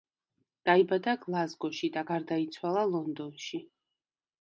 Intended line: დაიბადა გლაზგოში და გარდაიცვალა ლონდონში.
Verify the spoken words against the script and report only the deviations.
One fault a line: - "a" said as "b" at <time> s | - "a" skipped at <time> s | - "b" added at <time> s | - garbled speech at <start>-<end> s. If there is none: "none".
none